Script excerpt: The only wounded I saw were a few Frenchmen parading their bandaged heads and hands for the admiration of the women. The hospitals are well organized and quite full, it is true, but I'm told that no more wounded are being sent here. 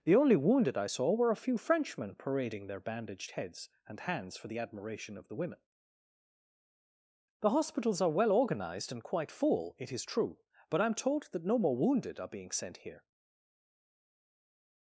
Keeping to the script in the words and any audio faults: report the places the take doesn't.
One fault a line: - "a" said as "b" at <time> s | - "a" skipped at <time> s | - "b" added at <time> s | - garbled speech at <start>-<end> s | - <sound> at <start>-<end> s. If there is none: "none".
none